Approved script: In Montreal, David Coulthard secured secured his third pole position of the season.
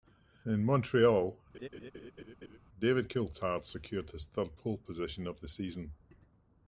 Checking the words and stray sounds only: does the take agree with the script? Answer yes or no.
no